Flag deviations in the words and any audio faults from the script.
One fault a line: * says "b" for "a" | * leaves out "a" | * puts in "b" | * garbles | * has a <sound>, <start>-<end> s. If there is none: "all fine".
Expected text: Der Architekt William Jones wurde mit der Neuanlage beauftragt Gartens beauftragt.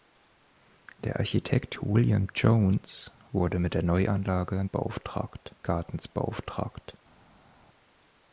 all fine